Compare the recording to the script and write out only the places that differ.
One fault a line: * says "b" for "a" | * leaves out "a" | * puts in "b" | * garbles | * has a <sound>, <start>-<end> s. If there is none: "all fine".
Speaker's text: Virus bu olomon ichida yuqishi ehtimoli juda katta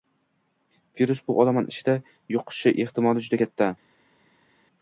all fine